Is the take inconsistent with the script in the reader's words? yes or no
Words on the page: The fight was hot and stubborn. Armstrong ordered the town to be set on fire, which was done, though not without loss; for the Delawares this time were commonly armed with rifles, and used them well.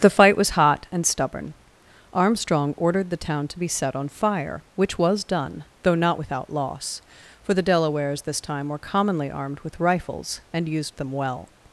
no